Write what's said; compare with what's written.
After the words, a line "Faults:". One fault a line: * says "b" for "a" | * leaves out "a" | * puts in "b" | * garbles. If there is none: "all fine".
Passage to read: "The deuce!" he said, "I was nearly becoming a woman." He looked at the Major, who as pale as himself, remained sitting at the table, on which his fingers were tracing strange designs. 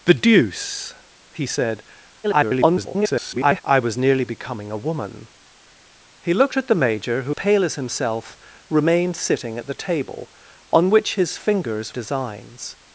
"The deuce!" he said, [garbled] "I was nearly becoming a woman." He looked at the Major, who pale as himself, remained sitting at the table, on which his fingers designs.
Faults:
* garbles
* leaves out "as"
* leaves out "were tracing strange"